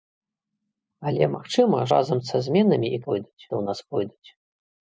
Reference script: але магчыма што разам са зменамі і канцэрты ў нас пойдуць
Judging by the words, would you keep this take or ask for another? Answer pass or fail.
fail